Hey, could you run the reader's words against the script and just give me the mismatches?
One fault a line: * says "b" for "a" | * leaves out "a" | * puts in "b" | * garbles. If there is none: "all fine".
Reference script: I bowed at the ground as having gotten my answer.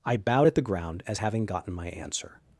all fine